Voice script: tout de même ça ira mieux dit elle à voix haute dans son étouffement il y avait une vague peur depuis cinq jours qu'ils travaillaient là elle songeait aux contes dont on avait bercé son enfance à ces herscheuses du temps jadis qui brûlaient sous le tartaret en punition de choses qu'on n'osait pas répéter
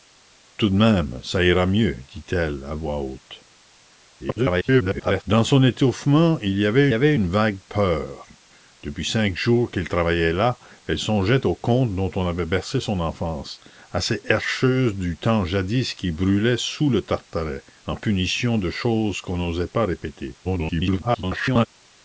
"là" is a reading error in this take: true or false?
false